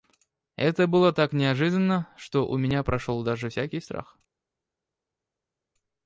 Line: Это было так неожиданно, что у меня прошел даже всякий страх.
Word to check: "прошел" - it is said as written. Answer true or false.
true